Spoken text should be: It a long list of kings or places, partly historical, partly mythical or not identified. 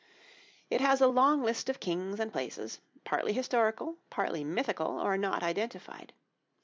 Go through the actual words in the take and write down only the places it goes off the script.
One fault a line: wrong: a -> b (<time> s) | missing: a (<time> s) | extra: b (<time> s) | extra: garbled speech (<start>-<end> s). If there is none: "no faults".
extra: has (0.8 s)
wrong: or -> and (2.2 s)